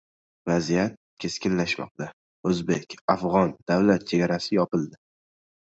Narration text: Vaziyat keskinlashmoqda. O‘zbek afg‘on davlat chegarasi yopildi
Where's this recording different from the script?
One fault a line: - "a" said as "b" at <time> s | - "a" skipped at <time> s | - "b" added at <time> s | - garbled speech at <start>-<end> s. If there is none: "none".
none